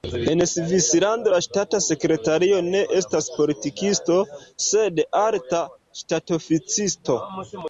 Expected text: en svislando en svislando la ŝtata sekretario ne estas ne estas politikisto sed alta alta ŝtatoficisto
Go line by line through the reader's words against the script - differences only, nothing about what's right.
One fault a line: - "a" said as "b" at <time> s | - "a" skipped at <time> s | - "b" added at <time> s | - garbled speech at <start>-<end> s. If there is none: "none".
- "en svislando" skipped at 1.3 s
- "ne estas" skipped at 3.3 s
- "alta" skipped at 5.6 s